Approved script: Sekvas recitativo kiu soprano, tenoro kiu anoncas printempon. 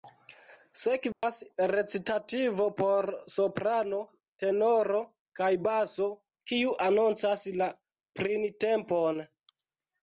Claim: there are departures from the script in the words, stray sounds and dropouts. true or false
true